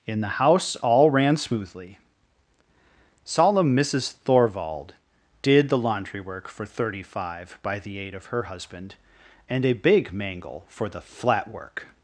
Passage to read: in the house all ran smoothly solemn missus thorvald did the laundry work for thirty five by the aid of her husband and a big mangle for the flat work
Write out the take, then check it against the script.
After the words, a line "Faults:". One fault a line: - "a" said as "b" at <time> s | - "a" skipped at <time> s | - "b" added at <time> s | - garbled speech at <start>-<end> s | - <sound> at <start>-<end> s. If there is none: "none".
in the house all ran smoothly solemn missus thorvald did the laundry work for thirty five by the aid of her husband and a big mangle for the flat work
Faults:
none